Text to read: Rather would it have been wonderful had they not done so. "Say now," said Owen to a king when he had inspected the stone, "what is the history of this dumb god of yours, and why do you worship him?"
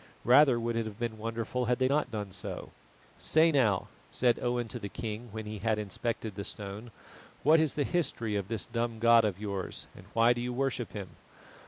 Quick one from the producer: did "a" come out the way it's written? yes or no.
no